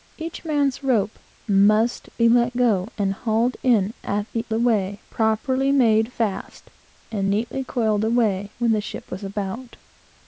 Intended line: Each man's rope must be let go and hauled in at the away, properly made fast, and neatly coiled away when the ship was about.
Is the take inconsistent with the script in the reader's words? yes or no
no